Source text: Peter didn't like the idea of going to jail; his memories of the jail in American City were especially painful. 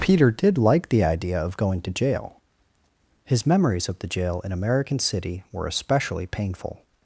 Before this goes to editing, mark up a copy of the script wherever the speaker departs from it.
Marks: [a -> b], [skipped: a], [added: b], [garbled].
Peter [didn't -> did] like the idea of going to jail; his memories of the jail in American City were especially painful.